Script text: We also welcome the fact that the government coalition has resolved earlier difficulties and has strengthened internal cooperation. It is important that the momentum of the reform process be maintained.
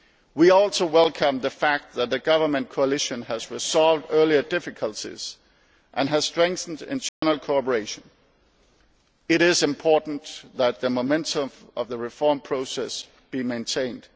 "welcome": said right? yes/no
yes